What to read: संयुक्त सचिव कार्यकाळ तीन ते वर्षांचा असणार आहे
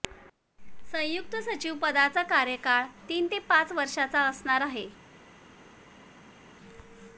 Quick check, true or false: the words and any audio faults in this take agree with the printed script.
false